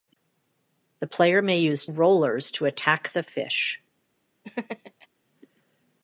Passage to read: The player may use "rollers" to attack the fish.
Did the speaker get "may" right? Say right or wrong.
right